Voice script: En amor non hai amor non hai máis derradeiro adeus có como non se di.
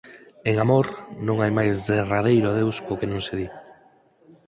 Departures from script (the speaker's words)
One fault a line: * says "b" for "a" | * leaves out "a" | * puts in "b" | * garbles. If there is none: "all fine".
* leaves out "amor non hai"
* says "que" for "como"